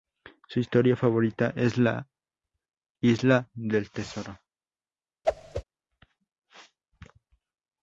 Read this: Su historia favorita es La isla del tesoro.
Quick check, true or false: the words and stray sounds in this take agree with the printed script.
false